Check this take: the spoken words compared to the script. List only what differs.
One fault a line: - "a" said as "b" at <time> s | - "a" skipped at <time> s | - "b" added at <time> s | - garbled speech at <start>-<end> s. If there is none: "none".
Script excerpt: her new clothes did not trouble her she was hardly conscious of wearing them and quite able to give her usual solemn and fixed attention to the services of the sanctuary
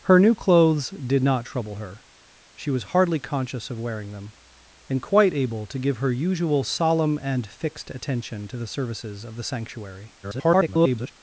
- garbled speech at 10.2-11.1 s